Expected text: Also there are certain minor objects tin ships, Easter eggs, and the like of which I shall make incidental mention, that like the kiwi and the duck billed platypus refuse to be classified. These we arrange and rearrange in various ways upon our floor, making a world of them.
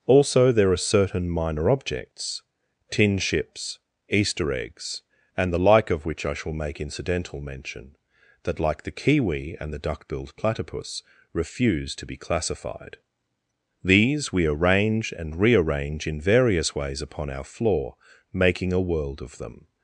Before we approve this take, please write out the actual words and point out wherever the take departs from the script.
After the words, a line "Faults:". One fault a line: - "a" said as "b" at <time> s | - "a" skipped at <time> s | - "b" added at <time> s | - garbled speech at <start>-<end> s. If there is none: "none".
Also there are certain minor objects tin ships, Easter eggs, and the like of which I shall make incidental mention, that like the kiwi and the duck billed platypus refuse to be classified. These we arrange and rearrange in various ways upon our floor, making a world of them.
Faults:
none